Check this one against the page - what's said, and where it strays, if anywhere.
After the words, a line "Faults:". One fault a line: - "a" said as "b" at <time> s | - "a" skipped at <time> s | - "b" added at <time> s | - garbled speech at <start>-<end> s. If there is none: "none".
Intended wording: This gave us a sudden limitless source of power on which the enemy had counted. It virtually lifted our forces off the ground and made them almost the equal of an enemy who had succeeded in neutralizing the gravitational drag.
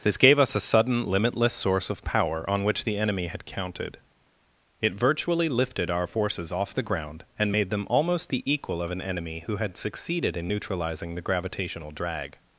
This gave us a sudden limitless source of power on which the enemy had counted. It virtually lifted our forces off the ground and made them almost the equal of an enemy who had succeeded in neutralizing the gravitational drag.
Faults:
none